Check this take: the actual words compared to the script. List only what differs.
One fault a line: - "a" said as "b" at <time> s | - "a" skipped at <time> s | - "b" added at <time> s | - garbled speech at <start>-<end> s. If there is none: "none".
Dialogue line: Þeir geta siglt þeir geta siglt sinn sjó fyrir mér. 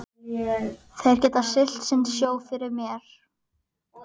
- "þeir geta siglt" skipped at 1.9 s